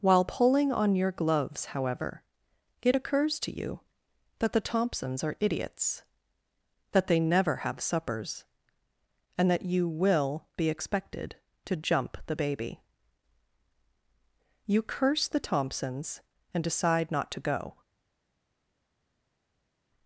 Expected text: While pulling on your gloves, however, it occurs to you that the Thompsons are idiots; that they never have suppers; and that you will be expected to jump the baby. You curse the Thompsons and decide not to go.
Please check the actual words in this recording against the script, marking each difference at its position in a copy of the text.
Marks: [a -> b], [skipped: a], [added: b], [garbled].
While pulling on your gloves, however, it occurs to you that the Thompsons are idiots; that they never have suppers; and that you will be expected to jump the baby. You curse the Thompsons and decide not to go.